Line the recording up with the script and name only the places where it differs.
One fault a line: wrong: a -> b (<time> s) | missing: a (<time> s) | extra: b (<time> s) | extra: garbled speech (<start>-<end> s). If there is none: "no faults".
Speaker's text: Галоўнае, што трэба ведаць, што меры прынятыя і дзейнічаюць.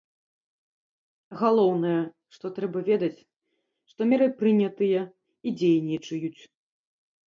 no faults